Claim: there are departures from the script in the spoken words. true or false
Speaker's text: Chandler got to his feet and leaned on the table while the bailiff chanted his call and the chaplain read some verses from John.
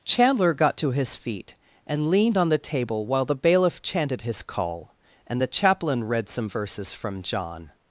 false